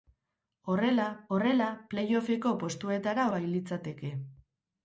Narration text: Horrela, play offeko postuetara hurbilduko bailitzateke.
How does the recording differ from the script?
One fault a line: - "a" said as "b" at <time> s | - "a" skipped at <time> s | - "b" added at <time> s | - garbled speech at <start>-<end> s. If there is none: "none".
- "horrela" added at 1.4 s
- "hurbilduko" skipped at 3.3 s